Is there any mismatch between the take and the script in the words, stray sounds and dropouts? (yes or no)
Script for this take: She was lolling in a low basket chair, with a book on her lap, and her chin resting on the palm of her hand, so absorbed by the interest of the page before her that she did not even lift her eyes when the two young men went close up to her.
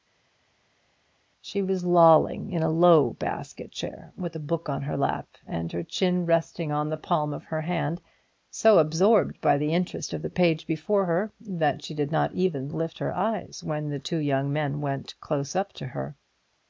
no